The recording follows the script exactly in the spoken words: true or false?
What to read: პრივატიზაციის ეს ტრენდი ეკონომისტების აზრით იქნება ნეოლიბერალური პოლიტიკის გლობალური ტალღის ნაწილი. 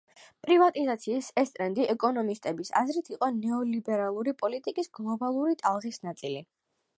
false